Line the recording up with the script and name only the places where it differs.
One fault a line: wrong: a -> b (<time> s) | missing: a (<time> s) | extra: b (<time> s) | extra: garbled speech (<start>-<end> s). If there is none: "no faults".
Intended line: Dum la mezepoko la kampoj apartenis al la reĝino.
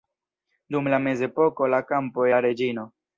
missing: apartenis al (2.3 s)